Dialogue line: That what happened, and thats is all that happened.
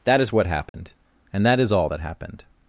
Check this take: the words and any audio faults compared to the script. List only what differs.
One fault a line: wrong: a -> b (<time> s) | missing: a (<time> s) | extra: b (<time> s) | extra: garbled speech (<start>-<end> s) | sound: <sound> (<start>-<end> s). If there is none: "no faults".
extra: is (0.2 s)
sound: dropout (0.7-0.7 s)
wrong: thats -> that (1.4 s)